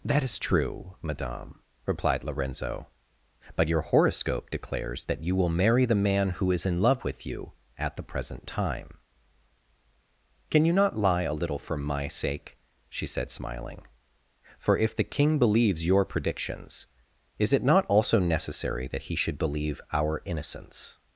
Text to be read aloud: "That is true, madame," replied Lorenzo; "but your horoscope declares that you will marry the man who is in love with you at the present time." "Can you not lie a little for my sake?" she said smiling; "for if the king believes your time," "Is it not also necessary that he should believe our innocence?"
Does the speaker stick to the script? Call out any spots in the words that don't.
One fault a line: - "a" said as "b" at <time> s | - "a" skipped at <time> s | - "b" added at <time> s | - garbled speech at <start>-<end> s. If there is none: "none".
- "time" said as "predictions" at 16.0 s